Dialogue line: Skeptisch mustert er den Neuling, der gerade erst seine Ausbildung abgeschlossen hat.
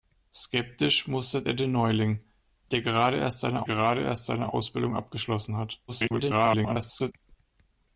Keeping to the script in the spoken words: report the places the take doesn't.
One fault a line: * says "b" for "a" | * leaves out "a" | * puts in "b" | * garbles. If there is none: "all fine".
* puts in "gerade erst seine"
* garbles